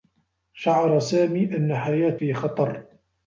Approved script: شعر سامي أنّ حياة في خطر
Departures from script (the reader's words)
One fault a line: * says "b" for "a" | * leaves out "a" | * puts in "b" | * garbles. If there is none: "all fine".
all fine